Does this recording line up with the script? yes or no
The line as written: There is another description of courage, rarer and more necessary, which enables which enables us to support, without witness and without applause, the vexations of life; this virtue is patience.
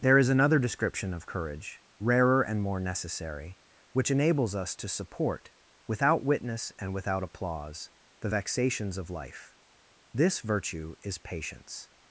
no